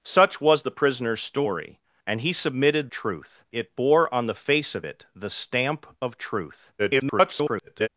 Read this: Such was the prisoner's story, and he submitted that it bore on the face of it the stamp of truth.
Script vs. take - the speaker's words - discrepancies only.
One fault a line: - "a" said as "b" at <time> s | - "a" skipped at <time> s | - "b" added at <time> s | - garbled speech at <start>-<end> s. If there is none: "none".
- "that" said as "truth" at 2.9 s
- garbled speech at 6.8-7.9 s